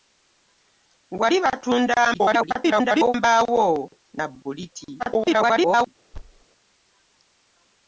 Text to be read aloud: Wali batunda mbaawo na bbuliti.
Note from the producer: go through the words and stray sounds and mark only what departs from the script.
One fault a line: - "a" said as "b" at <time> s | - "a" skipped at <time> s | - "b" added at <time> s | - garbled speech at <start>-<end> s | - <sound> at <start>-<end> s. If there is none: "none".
- garbled speech at 2.1-3.1 s
- garbled speech at 5.0-5.9 s
- thud at 6.1-6.5 s